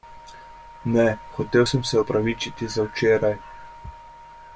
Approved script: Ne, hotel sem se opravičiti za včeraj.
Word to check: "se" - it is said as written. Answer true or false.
true